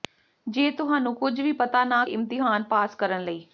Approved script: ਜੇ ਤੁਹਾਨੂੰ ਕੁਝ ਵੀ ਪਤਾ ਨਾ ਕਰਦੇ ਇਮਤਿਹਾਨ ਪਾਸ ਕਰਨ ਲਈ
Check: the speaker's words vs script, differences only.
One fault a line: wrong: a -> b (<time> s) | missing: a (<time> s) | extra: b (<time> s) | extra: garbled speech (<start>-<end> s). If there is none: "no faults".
missing: ਕਰਦੇ (2.0 s)